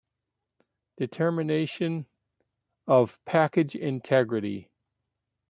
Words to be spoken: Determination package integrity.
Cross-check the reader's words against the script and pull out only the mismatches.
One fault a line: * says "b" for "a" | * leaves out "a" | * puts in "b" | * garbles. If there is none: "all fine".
* puts in "of"